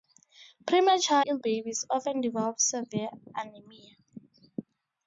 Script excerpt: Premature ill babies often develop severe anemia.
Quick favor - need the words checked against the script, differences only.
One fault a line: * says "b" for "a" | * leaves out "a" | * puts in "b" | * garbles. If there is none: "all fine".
all fine